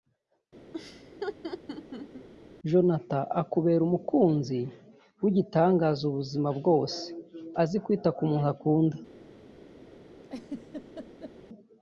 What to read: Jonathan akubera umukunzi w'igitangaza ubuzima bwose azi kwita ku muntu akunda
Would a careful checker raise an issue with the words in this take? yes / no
no